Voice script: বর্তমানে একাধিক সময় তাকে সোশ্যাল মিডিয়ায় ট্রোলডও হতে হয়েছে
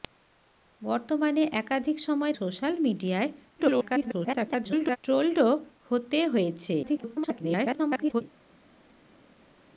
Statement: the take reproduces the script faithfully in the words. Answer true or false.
false